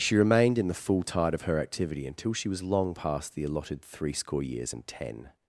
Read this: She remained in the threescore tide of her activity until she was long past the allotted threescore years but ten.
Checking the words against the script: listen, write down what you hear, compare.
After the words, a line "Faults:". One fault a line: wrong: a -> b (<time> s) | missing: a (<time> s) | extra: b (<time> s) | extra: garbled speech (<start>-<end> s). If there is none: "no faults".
She remained in the full tide of her activity until she was long past the allotted threescore years and ten.
Faults:
wrong: threescore -> full (0.7 s)
wrong: but -> and (4.7 s)